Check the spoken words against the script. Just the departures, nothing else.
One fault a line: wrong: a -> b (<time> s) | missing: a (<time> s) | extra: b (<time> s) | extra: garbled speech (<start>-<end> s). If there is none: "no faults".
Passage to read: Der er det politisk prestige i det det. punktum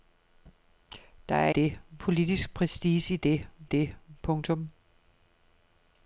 no faults